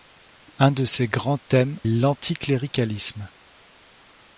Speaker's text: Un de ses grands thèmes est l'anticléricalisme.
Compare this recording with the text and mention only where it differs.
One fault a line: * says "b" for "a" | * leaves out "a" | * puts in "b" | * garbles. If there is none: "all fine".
* leaves out "est"